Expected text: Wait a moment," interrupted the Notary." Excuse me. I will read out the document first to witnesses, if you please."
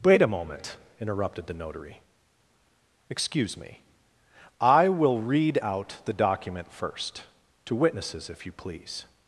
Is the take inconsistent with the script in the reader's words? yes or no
no